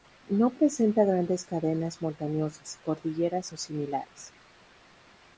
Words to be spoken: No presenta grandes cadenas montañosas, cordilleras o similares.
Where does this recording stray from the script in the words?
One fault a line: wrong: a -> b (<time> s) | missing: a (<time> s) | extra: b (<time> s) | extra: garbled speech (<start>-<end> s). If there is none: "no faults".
no faults